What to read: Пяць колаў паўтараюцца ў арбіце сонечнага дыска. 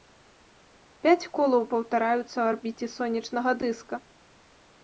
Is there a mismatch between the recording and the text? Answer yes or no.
no